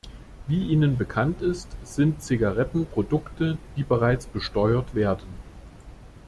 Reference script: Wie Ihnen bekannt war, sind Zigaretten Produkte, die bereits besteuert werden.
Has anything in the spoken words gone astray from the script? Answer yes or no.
yes